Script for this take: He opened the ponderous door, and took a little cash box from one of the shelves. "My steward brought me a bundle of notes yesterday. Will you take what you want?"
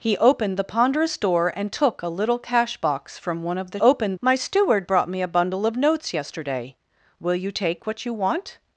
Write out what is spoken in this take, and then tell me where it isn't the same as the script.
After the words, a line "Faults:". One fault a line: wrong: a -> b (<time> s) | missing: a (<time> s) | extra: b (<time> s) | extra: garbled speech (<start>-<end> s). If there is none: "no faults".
He opened the ponderous door, and took a little cash box from one of the opened. "My steward brought me a bundle of notes yesterday. Will you take what you want?"
Faults:
wrong: shelves -> opened (3.8 s)